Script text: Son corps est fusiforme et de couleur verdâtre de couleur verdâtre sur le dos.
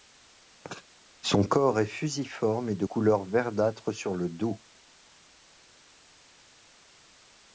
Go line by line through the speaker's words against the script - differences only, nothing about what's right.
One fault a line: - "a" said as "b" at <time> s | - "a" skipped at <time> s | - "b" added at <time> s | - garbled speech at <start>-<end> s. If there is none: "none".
- "de couleur verdâtre" skipped at 3.9 s